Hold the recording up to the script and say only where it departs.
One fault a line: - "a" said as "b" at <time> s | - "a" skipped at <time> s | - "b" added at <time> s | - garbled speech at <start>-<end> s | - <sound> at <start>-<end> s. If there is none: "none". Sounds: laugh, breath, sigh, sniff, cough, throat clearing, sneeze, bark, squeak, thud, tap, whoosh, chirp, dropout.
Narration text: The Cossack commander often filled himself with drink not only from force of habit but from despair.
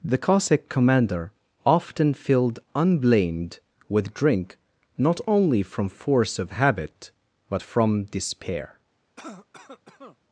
- "himself" said as "unblamed" at 2.7 s
- cough at 9.2-10.2 s